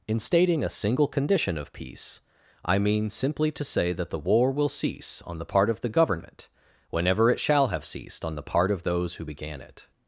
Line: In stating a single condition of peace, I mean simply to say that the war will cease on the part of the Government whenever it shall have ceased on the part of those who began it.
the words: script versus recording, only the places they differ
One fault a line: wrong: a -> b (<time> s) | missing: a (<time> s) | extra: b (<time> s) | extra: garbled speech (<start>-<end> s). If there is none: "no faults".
no faults